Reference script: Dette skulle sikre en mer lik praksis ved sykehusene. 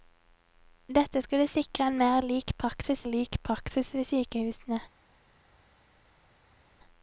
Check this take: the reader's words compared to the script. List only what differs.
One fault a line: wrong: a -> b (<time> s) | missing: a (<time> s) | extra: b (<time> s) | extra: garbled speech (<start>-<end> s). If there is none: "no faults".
extra: lik praksis (3.1 s)